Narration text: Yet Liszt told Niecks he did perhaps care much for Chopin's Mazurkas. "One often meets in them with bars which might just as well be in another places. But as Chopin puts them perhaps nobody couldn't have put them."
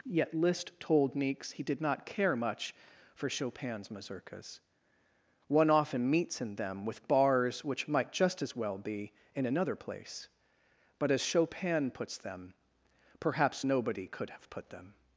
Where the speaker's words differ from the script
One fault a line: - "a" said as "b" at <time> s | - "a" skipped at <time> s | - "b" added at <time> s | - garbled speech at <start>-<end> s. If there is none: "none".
- "perhaps" said as "not" at 1.8 s
- "places" said as "place" at 9.8 s
- "couldn't" said as "could" at 14.1 s